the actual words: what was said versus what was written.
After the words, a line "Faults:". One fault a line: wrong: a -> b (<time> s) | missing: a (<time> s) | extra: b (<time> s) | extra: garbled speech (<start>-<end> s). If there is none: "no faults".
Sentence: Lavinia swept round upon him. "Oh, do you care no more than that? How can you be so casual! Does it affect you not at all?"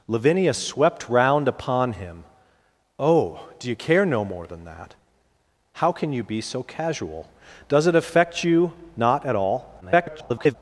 Lavinia swept round upon him. "Oh, do you care no more than that? How can you be so casual! Does it affect you not at all?" [garbled]
Faults:
extra: garbled speech (9.8-10.6 s)